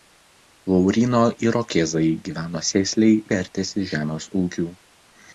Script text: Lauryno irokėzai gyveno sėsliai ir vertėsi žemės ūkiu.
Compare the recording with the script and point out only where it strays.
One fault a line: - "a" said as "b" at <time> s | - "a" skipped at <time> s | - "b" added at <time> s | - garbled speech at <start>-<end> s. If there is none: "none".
- "ir" skipped at 3.2 s